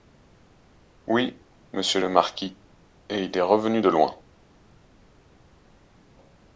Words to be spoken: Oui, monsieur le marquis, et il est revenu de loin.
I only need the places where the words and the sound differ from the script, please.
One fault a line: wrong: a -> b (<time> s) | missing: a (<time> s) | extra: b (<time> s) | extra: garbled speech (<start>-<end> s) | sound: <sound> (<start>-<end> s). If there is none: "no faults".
no faults